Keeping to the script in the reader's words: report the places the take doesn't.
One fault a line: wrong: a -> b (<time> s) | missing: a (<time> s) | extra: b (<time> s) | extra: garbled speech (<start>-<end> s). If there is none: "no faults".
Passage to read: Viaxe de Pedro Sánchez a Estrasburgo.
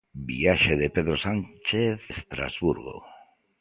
missing: a (2.0 s)